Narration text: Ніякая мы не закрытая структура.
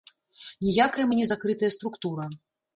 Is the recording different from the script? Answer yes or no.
no